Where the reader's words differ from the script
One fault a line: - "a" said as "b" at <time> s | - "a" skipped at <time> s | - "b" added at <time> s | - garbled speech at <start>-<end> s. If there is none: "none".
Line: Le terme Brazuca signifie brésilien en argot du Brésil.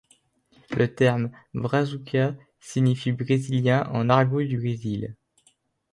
none